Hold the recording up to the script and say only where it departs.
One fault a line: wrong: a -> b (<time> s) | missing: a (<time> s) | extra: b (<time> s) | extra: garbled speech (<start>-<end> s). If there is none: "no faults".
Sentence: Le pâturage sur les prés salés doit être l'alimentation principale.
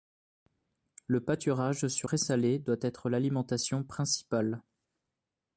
missing: les (2.1 s)